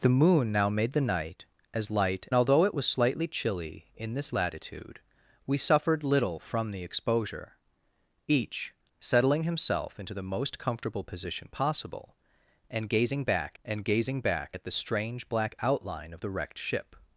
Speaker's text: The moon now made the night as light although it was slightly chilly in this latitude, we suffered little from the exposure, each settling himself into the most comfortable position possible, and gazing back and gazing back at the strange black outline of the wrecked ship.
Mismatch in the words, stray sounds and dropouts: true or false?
false